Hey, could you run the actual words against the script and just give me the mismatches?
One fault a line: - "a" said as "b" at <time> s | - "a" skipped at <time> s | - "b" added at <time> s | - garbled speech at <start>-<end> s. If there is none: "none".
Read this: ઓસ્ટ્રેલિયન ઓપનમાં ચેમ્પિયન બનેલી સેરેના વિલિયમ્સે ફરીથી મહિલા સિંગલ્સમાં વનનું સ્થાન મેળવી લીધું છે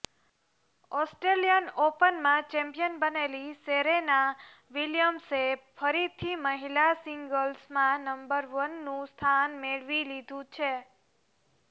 - "નંબર" added at 8.1 s